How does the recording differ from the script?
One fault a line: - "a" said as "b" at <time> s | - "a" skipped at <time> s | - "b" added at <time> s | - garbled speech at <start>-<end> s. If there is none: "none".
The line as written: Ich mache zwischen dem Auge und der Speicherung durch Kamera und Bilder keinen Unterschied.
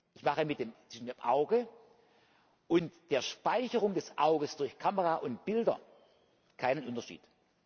- "des Auges" added at 3.9 s